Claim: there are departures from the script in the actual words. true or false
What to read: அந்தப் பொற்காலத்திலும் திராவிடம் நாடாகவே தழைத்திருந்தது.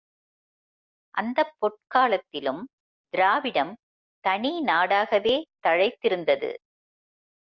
true